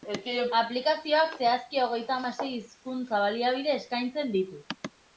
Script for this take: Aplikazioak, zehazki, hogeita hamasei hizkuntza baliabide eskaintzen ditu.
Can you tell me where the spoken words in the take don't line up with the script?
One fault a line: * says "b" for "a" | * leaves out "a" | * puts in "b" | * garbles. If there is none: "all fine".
all fine